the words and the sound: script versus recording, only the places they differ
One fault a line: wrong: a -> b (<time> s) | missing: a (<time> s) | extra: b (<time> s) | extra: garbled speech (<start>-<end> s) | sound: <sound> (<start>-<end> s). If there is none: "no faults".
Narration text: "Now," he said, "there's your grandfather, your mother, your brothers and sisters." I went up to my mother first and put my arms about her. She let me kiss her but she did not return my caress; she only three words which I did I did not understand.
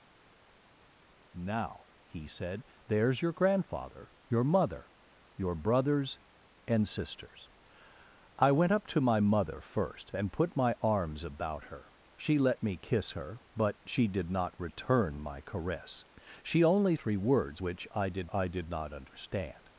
no faults